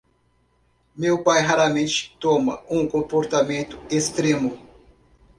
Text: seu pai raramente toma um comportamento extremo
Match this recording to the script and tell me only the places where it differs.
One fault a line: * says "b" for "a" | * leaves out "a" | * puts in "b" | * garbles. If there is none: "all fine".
* says "meu" for "seu"